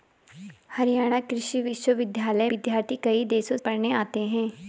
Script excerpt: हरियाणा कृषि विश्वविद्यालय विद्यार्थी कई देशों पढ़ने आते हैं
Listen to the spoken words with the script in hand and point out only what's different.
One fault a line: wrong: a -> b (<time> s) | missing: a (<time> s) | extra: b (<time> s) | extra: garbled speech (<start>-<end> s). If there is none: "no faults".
no faults